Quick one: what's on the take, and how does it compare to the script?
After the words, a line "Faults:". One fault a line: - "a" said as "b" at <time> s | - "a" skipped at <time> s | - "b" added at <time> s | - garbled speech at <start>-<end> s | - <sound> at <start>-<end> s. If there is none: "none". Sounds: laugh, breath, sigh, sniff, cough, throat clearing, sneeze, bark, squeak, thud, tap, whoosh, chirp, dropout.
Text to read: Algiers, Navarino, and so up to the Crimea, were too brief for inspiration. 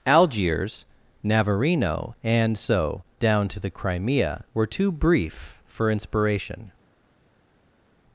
Algiers, Navarino, and so down to the Crimea, were too brief for inspiration.
Faults:
- "up" said as "down" at 3.2 s